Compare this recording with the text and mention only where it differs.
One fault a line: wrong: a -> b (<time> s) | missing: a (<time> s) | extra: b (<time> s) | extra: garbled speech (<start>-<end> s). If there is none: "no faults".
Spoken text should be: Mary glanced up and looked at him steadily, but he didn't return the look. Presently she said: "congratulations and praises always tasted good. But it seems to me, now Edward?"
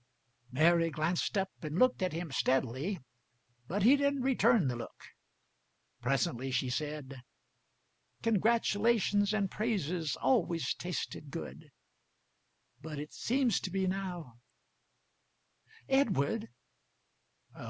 no faults